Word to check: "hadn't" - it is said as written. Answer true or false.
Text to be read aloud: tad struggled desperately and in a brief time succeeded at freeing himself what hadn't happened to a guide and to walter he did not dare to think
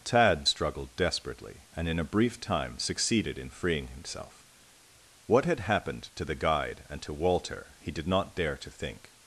false